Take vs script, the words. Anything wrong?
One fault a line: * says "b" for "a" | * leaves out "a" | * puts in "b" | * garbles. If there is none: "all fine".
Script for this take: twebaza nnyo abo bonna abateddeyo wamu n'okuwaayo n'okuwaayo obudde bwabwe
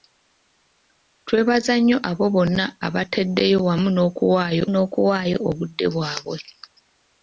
all fine